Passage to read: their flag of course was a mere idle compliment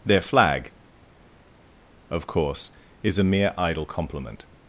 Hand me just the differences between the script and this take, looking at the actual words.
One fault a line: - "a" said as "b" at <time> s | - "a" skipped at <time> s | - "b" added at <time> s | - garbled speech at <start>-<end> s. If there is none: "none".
- "was" said as "is" at 3.0 s